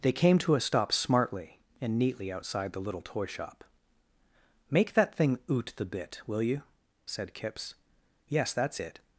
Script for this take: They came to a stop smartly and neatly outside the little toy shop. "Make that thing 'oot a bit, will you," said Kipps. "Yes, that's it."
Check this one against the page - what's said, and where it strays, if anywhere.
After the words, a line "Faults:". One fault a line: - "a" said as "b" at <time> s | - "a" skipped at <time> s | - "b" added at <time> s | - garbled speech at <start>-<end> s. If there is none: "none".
They came to a stop smartly and neatly outside the little toy shop. "Make that thing 'oot the bit, will you," said Kipps. "Yes, that's it."
Faults:
- "a" said as "the" at 5.8 s